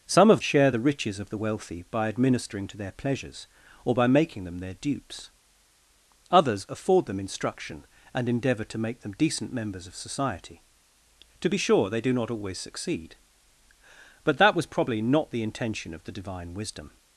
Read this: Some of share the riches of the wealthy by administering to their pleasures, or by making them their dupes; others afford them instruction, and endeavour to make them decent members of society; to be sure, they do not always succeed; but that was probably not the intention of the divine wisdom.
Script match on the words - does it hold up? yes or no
yes